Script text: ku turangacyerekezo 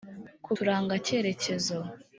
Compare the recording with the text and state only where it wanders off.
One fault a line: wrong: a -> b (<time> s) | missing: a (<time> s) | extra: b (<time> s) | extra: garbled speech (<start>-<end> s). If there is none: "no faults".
no faults